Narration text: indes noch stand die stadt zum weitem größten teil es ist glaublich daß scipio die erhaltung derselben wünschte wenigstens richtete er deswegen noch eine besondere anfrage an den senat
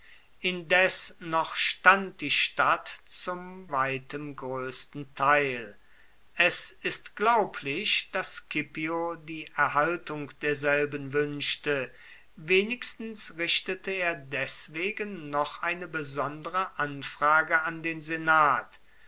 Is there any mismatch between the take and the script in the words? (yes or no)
no